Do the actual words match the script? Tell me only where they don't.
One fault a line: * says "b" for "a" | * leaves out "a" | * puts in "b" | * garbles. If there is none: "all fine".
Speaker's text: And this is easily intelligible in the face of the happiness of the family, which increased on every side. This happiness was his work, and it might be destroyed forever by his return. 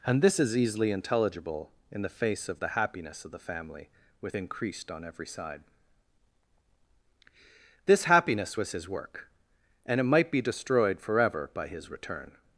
* says "with" for "which"